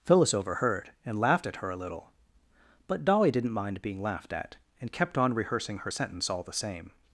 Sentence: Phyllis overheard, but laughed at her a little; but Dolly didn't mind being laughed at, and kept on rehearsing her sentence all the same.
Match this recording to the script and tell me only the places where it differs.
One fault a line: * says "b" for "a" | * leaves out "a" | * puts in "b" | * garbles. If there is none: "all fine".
* says "and" for "but"